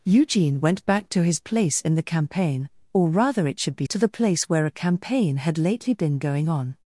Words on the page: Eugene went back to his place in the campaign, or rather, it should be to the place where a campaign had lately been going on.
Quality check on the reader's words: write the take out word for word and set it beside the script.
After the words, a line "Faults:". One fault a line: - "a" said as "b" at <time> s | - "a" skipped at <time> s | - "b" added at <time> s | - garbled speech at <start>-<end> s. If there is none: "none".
Eugene went back to his place in the campaign, or rather, it should be to the place where a campaign had lately been going on.
Faults:
none